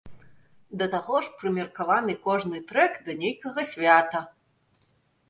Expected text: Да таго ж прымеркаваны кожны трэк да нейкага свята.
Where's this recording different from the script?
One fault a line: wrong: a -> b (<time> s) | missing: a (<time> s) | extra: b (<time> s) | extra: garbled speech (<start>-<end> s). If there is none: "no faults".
no faults